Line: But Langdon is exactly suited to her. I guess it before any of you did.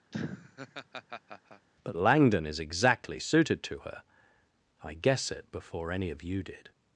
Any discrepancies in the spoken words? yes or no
no